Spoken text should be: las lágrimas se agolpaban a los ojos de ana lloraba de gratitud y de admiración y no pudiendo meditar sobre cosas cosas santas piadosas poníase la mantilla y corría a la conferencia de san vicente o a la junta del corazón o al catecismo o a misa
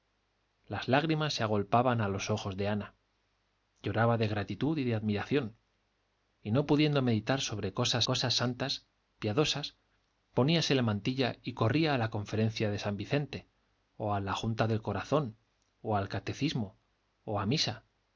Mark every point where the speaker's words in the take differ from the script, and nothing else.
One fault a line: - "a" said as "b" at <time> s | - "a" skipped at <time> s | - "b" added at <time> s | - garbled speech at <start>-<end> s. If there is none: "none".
none